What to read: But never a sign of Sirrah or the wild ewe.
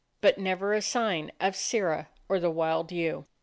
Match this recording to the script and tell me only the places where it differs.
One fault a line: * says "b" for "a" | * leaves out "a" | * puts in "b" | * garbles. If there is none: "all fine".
all fine